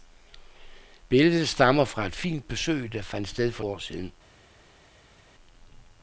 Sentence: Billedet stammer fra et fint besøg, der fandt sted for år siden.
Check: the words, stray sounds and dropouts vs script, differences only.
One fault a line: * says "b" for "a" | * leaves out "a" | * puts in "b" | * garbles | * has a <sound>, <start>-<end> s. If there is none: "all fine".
all fine